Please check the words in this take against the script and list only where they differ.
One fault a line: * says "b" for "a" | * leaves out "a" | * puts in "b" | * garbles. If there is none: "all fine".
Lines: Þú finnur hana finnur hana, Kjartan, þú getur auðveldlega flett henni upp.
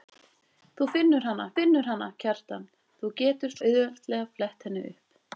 all fine